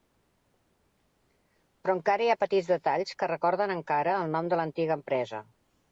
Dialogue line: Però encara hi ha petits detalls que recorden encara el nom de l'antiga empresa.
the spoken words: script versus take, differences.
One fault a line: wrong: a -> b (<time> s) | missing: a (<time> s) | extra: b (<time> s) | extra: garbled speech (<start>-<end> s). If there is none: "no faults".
no faults